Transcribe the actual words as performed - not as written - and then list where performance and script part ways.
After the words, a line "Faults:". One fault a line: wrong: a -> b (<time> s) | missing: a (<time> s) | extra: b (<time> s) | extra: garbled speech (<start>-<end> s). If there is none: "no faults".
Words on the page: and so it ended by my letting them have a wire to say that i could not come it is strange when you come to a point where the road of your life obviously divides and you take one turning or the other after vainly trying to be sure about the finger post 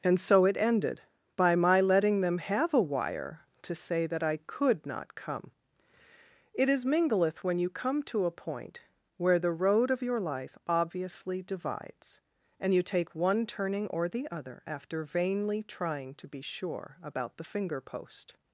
and so it ended by my letting them have a wire to say that i could not come it is mingleth when you come to a point where the road of your life obviously divides and you take one turning or the other after vainly trying to be sure about the finger post
Faults:
wrong: strange -> mingleth (6.8 s)